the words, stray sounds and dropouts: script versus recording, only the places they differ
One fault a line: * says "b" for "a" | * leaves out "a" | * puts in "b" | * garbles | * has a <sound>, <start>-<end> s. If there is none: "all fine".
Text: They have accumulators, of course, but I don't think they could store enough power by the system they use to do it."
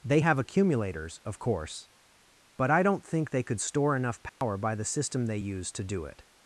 * has a dropout, 4.3-4.4 s